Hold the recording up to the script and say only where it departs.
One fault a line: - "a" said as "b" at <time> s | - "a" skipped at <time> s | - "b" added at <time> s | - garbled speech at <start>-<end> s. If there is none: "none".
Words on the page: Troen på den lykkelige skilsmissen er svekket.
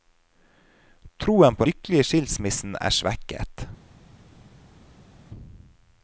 - "den" skipped at 1.7 s